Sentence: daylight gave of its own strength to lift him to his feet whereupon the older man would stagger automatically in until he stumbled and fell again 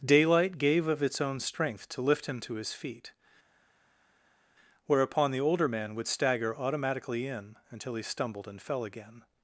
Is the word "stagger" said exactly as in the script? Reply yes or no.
yes